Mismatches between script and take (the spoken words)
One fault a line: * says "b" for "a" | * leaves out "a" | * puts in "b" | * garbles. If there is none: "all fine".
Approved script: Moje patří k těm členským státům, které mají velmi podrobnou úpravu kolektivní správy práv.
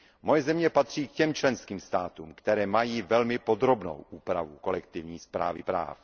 * puts in "země"